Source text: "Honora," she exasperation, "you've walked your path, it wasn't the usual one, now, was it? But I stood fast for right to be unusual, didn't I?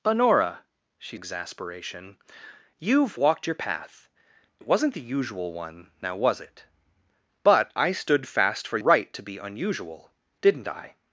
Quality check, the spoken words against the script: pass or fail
pass